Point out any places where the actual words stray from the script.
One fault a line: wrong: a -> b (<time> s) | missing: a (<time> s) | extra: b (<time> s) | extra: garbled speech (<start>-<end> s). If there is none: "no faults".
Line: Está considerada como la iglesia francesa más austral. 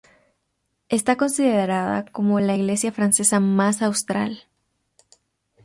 no faults